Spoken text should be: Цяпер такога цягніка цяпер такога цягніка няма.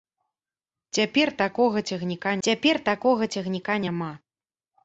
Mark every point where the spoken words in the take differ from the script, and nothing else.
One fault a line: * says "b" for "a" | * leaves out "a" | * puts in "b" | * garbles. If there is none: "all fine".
all fine